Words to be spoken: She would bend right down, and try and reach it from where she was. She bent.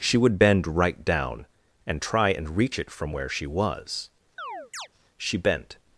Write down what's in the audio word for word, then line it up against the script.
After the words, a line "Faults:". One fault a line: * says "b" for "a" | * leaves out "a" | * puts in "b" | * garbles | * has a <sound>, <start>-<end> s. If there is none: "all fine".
She would bend right down, and try and reach it from where she was. She bent.
Faults:
* has a chirp, 4.4-4.9 s